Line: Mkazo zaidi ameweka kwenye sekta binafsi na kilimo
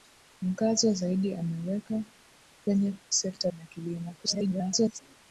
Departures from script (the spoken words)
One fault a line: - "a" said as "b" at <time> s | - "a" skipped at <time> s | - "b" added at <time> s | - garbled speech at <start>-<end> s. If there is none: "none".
- "binafsi" skipped at 3.5 s
- garbled speech at 4.2-5.0 s